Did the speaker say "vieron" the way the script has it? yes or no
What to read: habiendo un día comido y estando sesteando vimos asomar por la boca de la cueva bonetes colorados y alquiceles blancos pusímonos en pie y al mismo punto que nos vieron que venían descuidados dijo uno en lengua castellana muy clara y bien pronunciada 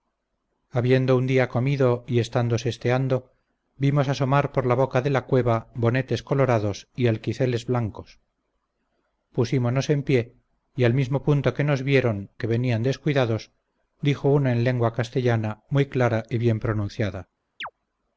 yes